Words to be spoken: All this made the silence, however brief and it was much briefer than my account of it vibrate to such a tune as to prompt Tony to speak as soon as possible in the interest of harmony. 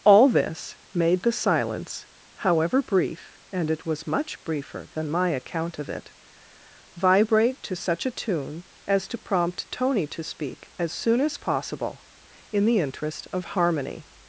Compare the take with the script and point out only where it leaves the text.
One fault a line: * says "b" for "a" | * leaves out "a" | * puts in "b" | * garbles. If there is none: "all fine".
all fine